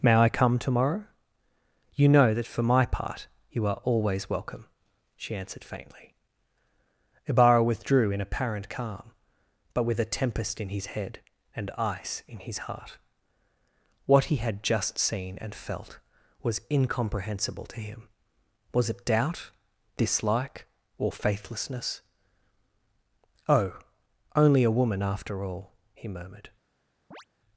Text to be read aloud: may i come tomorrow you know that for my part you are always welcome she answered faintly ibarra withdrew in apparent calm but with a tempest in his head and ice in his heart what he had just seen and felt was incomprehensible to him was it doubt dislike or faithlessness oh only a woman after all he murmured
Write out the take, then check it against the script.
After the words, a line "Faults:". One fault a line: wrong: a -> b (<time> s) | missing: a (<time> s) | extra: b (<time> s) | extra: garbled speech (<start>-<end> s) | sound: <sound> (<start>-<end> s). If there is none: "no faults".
may i come tomorrow you know that for my part you are always welcome she answered faintly ibarra withdrew in apparent calm but with a tempest in his head and ice in his heart what he had just seen and felt was incomprehensible to him was it doubt dislike or faithlessness oh only a woman after all he murmured
Faults:
sound: chirp (27.1-27.3 s)